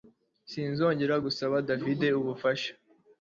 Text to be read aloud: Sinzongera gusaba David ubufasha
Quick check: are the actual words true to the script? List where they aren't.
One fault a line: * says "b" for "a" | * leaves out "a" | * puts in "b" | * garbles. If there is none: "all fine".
all fine